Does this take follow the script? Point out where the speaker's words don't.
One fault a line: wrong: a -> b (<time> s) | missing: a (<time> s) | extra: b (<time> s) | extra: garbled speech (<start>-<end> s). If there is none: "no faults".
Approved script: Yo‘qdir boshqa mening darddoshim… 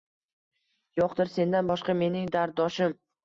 extra: sendan (1.4 s)